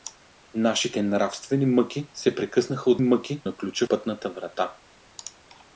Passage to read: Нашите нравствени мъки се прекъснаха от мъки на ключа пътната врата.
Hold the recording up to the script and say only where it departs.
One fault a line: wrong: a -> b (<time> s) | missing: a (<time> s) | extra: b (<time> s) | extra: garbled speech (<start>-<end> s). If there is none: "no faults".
no faults